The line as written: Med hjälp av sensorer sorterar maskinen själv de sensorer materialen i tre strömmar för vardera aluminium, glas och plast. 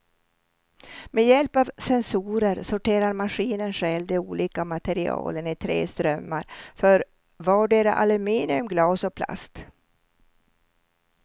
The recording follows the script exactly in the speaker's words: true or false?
false